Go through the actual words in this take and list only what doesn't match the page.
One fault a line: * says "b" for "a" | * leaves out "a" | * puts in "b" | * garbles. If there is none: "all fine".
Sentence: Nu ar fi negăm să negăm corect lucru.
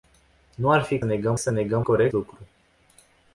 all fine